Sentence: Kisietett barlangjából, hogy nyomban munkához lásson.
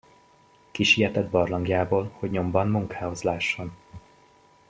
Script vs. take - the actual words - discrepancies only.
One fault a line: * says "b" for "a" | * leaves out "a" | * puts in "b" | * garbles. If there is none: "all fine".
all fine